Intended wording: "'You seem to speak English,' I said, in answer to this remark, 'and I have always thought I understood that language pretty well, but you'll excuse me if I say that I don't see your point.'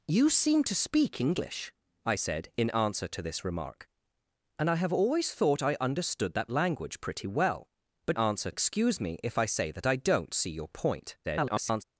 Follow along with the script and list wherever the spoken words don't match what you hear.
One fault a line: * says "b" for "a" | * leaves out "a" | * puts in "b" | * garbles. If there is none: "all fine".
* says "answer" for "you'll"
* garbles